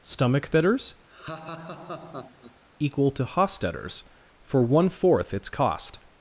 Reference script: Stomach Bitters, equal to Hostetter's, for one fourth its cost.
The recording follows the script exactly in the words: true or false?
true